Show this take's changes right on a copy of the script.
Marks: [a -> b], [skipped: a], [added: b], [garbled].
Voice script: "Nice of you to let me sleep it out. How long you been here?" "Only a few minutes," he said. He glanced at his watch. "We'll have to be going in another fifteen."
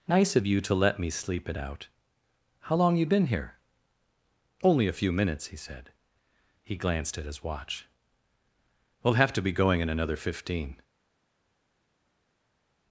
"Nice of you to let me sleep it out. How long you been here?" "Only a few minutes," he said. He glanced at his watch. "We'll have to be going in another fifteen."